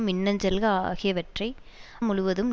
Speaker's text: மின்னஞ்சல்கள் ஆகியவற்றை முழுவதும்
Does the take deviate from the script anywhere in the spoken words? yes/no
no